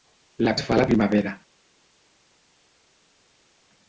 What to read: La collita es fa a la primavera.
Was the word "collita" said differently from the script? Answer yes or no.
yes